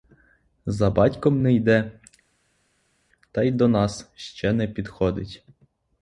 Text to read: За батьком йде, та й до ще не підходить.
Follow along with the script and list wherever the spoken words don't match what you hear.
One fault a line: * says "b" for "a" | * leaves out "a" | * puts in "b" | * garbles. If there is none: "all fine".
* puts in "не"
* puts in "нас"